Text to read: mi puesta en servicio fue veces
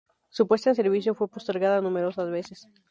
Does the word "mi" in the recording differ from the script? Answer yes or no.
yes